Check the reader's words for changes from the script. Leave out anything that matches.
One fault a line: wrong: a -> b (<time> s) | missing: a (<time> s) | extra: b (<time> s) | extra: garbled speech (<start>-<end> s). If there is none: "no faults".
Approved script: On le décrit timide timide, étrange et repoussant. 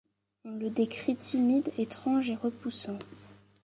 missing: timide (1.7 s)